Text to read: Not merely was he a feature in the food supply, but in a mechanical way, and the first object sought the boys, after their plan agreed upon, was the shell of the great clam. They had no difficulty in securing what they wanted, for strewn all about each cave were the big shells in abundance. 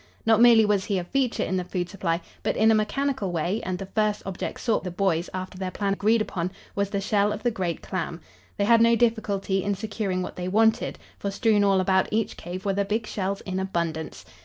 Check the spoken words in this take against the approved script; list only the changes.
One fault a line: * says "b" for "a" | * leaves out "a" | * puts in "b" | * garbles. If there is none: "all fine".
all fine